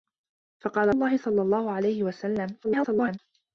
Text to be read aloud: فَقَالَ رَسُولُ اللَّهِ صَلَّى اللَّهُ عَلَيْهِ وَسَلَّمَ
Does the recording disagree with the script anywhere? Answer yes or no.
yes